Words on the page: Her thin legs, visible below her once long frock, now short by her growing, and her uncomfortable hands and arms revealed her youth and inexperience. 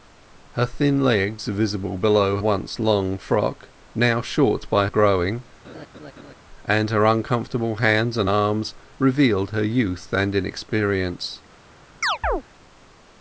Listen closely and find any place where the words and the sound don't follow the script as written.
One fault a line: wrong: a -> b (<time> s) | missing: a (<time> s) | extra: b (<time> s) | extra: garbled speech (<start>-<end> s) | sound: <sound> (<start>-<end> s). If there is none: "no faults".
missing: her (2.4 s)
missing: her (4.9 s)
sound: laugh (5.6-6.3 s)
sound: chirp (12.0-12.4 s)